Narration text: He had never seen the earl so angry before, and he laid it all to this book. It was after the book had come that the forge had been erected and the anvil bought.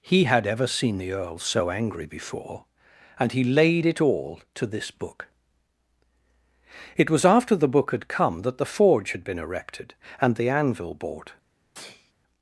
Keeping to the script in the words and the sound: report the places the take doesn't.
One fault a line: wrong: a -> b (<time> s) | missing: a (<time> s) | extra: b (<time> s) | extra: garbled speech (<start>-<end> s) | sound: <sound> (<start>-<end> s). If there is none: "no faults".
wrong: never -> ever (0.5 s)
sound: sneeze (11.7-12.1 s)